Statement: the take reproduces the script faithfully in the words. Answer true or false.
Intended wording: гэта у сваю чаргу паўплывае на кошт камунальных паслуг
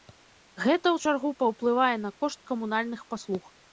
false